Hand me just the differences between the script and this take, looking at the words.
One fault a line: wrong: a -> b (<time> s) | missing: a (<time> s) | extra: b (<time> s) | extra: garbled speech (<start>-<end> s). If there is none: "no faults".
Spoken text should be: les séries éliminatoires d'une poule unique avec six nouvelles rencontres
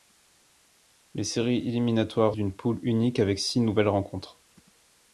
no faults